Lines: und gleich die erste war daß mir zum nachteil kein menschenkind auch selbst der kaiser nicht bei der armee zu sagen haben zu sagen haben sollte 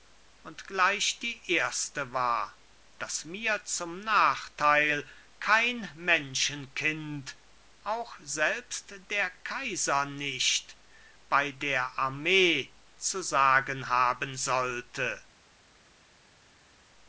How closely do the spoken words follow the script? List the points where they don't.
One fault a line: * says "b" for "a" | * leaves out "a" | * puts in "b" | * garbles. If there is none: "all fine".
* leaves out "zu sagen haben"